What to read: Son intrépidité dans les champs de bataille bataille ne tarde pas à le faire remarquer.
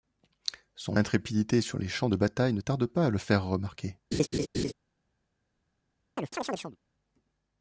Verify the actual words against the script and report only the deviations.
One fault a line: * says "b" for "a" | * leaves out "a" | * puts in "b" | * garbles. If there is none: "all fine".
* says "sur" for "dans"
* leaves out "bataille"